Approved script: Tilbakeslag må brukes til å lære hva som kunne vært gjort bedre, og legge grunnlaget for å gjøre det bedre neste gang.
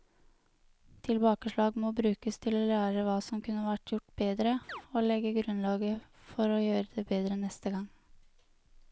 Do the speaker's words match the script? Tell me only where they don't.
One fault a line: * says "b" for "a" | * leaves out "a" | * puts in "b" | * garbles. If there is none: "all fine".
all fine